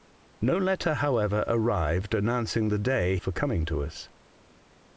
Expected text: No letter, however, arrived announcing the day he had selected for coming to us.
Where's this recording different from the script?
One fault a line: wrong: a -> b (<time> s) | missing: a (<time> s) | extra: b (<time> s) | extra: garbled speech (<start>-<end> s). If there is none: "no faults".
missing: he had selected (3.2 s)